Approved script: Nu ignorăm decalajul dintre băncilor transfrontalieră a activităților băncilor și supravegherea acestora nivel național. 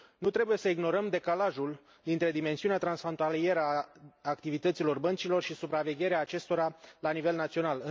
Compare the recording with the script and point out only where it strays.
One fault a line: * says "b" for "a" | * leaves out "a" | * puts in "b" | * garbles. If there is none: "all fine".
* puts in "trebuie să"
* says "dimensiunea" for "băncilor"
* puts in "la"